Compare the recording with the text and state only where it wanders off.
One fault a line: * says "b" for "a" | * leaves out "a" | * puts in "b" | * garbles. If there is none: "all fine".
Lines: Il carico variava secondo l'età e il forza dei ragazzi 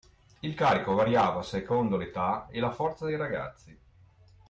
* says "la" for "il"